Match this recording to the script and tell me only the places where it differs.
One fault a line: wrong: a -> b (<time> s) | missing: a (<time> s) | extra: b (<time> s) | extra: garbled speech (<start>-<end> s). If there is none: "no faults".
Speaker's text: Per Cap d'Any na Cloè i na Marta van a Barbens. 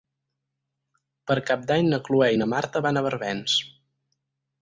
no faults